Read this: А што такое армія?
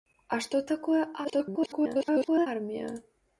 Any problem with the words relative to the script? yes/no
yes